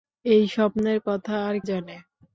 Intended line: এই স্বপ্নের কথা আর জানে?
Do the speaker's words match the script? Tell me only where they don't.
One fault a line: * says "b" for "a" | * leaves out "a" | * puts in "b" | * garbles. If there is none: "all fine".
all fine